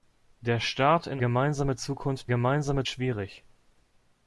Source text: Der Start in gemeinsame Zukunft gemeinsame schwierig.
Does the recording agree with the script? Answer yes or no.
yes